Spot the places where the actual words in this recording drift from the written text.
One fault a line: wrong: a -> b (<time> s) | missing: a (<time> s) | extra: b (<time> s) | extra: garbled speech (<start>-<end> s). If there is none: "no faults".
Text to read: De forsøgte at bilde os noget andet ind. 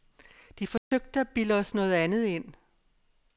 no faults